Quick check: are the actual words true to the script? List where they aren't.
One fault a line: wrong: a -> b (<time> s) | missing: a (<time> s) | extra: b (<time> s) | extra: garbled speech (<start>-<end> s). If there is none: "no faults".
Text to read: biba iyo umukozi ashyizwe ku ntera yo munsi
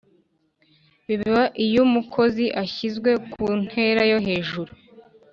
wrong: munsi -> hejuru (4.3 s)